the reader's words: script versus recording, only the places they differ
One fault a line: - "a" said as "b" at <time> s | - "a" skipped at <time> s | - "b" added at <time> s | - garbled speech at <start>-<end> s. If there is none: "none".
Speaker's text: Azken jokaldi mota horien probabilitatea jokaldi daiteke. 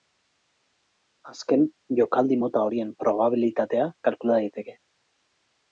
- "jokaldi" said as "kalkula" at 4.1 s